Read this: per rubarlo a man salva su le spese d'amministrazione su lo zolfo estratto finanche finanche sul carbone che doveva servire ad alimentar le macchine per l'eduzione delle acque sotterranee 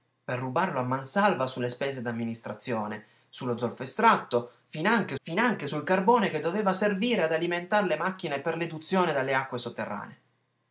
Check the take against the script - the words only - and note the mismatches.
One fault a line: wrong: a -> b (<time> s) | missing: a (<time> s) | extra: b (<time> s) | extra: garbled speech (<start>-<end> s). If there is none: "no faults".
no faults